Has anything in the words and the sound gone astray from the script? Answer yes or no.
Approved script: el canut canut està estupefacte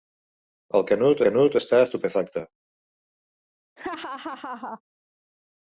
yes